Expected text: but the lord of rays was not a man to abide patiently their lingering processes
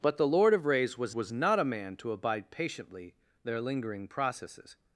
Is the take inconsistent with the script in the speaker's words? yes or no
yes